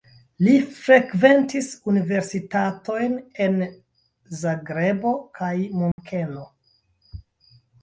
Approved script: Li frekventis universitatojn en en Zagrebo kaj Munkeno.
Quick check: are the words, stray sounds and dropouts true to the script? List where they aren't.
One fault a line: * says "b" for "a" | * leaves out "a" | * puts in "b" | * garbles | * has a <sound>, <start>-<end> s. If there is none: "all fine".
* leaves out "en"
* has a dropout, 5.9-6.0 s